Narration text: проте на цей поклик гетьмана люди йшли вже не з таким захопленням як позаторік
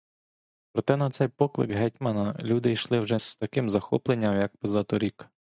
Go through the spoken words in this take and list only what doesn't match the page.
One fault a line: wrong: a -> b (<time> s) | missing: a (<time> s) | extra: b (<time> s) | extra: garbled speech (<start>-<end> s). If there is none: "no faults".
missing: не (3.2 s)